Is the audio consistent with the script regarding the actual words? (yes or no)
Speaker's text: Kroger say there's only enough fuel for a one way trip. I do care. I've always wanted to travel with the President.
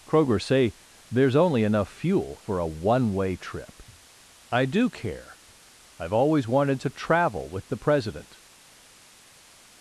yes